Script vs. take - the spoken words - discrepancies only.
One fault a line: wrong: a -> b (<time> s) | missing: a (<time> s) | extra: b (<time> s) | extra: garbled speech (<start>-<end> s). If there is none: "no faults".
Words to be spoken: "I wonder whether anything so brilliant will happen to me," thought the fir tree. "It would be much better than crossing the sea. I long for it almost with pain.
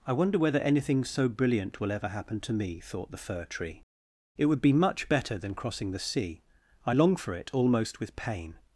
extra: ever (1.9 s)